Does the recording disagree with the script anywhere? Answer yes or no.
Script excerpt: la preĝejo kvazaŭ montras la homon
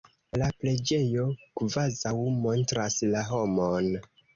no